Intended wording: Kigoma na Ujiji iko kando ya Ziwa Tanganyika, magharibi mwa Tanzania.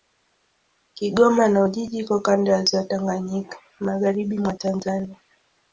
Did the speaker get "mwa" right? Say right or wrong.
right